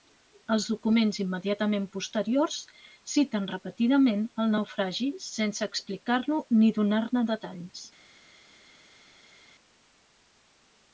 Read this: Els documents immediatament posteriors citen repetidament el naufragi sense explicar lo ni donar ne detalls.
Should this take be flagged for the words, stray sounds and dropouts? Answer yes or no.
no